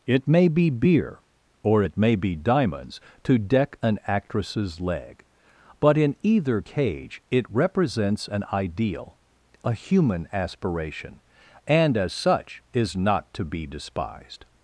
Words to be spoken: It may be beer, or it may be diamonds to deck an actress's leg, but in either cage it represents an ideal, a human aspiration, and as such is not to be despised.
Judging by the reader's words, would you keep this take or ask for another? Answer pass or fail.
pass